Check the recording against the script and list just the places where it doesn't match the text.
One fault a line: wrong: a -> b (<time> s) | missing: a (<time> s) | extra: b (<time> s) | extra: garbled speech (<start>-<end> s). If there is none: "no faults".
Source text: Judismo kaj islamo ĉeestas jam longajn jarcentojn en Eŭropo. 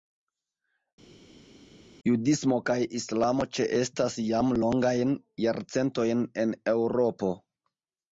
no faults